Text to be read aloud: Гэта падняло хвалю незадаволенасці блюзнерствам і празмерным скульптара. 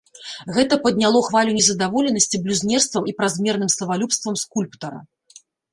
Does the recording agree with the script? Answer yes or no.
no